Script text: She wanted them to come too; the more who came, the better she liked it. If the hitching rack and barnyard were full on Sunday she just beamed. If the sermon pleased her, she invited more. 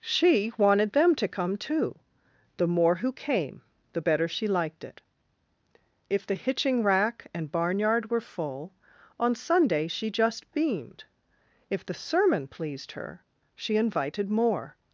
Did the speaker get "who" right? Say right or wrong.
right